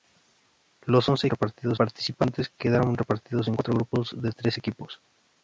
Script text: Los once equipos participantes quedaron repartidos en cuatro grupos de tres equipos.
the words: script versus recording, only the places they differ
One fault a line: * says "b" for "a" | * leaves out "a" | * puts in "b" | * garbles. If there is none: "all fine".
* says "repartidos" for "equipos"